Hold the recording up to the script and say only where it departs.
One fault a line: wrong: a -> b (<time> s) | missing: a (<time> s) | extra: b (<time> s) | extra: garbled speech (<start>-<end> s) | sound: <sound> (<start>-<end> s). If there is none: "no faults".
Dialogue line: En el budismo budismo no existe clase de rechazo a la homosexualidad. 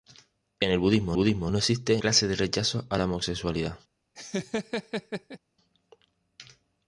sound: laugh (4.2-5.4 s)